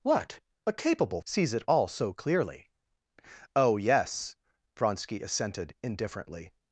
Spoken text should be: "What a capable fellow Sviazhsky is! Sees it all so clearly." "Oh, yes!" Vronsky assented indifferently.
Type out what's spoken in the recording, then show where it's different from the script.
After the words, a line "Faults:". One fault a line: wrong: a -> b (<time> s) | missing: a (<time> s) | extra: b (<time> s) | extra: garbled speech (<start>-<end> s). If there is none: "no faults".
"What a capable! Sees it all so clearly." "Oh, yes!" Vronsky assented indifferently.
Faults:
missing: fellow Sviazhsky is (1.2 s)